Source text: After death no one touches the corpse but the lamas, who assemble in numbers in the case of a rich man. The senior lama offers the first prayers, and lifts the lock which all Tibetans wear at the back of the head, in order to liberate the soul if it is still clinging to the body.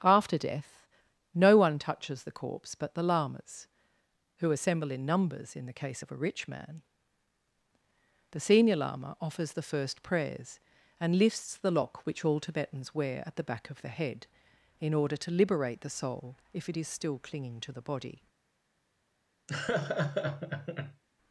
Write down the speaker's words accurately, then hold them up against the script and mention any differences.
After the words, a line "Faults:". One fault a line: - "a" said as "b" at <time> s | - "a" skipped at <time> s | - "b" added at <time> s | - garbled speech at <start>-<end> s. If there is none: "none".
After death no one touches the corpse but the lamas, who assemble in numbers in the case of a rich man. The senior lama offers the first prayers, and lifts the lock which all Tibetans wear at the back of the head, in order to liberate the soul if it is still clinging to the body.
Faults:
none